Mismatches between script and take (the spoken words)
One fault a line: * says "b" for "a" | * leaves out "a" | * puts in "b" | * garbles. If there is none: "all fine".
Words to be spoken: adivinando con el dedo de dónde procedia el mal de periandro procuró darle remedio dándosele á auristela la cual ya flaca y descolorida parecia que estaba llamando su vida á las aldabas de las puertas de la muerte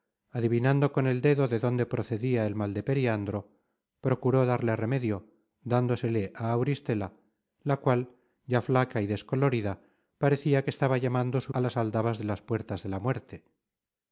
* leaves out "vida"